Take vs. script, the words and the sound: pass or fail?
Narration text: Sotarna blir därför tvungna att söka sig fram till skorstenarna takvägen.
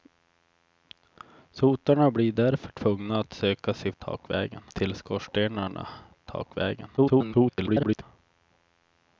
fail